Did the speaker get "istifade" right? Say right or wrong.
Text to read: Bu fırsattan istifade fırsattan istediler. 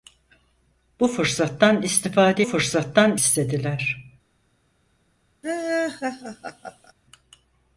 right